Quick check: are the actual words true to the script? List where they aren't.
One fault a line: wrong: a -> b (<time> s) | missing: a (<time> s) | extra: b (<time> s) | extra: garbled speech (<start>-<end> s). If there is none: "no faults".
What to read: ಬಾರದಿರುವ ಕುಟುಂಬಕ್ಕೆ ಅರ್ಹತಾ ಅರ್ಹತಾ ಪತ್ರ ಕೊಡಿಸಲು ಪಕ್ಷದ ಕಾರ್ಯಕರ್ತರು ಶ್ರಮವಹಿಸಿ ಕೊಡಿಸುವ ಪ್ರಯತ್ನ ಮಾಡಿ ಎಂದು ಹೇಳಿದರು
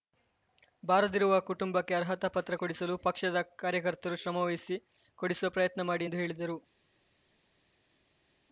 missing: ಅರ್ಹತಾ (2.3 s)